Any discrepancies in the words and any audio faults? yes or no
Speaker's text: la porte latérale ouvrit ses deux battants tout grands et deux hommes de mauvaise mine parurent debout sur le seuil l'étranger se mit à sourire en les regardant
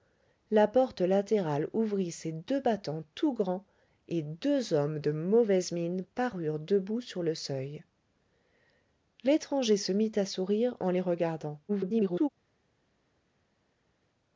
yes